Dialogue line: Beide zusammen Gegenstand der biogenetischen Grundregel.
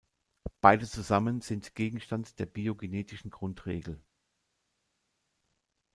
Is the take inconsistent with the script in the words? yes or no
yes